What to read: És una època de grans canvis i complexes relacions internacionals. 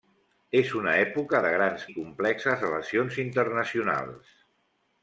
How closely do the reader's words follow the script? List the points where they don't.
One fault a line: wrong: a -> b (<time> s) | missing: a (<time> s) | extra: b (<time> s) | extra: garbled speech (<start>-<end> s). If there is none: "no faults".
missing: canvis (1.8 s)